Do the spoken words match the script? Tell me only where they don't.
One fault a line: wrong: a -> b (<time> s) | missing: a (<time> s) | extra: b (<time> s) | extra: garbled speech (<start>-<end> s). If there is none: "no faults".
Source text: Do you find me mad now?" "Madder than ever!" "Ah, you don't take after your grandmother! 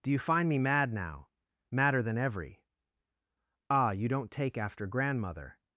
wrong: ever -> every (2.2 s)
missing: your (4.9 s)